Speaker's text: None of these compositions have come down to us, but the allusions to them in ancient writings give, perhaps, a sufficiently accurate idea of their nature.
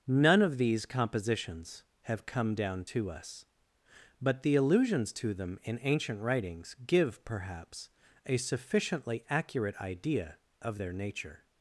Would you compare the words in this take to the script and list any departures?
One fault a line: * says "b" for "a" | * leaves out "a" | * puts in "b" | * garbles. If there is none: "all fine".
all fine